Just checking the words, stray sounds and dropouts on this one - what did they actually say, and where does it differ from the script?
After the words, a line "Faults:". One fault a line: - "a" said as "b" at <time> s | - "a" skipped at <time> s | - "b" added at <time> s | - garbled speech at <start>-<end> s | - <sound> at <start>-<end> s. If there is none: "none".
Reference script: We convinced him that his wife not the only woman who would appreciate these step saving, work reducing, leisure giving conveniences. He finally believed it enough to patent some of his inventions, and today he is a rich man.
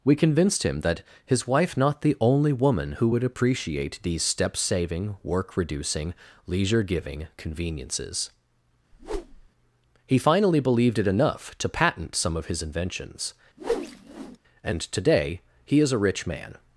We convinced him that his wife not the only woman who would appreciate these step saving, work reducing, leisure giving conveniences. He finally believed it enough to patent some of his inventions, and today he is a rich man.
Faults:
- whoosh at 8.9-9.5 s
- whoosh at 13.6-14.4 s